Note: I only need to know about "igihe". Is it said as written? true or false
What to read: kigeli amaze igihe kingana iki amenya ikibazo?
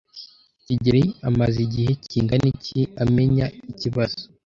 true